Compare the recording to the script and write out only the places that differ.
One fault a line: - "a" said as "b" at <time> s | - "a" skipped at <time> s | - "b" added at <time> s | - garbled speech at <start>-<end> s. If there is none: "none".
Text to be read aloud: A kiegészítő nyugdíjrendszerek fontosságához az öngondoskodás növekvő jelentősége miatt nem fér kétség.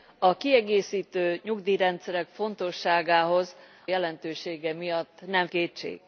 - "az öngondoskodás növekvő" skipped at 3.6 s
- "fér" skipped at 5.5 s